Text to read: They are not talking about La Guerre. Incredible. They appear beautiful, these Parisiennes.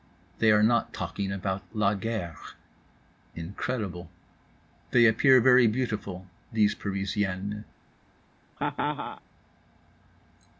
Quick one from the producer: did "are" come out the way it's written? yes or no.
yes